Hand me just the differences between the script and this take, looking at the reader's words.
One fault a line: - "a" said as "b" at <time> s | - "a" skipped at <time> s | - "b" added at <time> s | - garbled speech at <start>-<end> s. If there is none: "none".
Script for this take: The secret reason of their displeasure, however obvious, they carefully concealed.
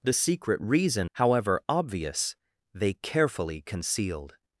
- "of their displeasure" skipped at 1.1 s